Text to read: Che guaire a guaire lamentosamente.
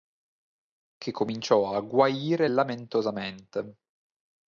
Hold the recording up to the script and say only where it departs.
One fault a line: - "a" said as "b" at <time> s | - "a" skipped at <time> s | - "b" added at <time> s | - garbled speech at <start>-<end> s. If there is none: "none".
- "guaire" said as "cominciò" at 1.1 s